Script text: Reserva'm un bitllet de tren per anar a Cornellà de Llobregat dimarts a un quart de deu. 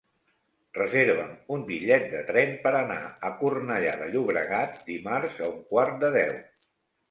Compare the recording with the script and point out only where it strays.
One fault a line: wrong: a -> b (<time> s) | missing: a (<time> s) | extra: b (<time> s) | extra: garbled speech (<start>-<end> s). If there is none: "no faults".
no faults